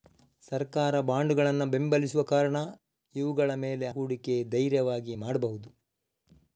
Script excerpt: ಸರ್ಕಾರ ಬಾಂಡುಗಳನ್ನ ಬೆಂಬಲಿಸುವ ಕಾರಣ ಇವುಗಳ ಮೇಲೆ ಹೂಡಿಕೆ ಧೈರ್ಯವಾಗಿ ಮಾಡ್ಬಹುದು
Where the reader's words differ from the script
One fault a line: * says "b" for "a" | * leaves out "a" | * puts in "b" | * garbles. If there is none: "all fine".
all fine